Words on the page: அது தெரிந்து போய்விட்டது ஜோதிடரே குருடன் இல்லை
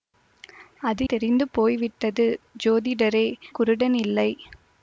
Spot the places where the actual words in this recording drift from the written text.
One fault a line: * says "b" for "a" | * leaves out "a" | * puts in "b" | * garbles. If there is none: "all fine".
all fine